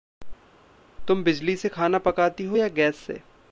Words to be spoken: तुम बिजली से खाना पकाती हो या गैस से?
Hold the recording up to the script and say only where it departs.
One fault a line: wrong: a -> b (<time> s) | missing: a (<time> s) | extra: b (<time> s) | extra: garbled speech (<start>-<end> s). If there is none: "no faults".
no faults